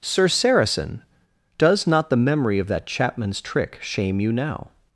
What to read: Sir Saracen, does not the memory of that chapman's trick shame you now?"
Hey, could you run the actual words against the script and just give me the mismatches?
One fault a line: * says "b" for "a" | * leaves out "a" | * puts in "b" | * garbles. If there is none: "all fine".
all fine